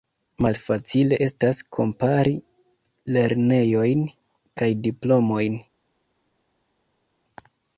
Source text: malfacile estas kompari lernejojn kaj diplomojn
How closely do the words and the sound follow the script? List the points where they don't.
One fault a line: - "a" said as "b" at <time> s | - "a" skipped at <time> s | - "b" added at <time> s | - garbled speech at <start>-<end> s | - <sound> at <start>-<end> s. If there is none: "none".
none